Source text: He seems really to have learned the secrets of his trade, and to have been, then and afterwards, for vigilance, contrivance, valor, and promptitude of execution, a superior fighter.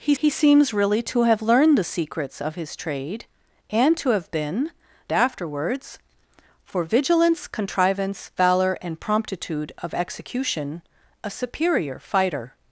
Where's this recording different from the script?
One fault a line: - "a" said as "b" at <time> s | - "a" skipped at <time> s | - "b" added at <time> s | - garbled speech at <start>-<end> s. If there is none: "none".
- "he" added at 0.2 s
- "then and" skipped at 4.7 s